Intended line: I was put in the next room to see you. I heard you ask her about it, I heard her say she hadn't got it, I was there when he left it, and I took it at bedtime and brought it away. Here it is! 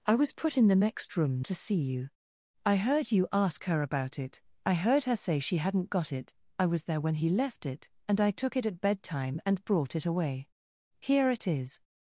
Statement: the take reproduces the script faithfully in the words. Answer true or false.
true